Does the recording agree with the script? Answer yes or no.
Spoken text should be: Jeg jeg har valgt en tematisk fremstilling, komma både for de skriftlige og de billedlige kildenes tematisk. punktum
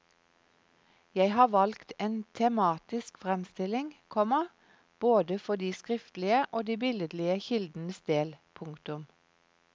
no